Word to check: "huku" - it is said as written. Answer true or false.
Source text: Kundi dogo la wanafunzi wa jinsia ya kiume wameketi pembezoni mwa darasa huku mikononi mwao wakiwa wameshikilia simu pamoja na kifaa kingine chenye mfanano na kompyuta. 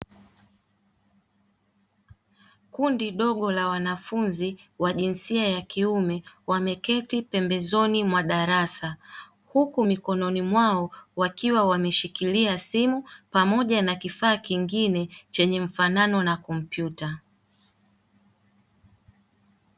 true